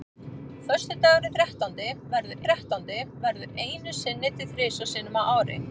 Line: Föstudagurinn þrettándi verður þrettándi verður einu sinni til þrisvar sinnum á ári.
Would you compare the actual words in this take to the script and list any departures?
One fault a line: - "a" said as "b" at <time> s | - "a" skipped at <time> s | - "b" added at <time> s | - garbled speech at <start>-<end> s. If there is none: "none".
none